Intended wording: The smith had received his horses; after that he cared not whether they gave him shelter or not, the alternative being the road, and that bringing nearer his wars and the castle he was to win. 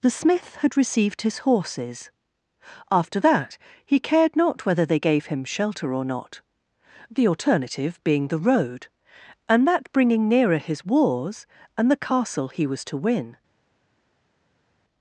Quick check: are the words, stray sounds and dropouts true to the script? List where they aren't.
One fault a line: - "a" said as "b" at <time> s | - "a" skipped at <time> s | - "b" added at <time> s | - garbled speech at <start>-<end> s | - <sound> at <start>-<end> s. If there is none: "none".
none